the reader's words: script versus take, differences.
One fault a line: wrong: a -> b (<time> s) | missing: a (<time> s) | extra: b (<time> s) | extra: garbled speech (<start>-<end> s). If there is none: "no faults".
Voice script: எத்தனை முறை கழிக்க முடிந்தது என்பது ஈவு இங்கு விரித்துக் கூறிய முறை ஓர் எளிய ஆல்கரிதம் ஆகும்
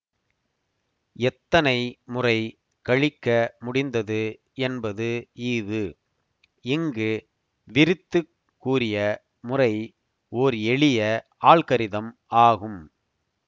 no faults